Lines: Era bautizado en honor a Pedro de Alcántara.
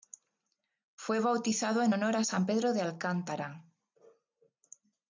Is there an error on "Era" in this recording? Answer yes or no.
yes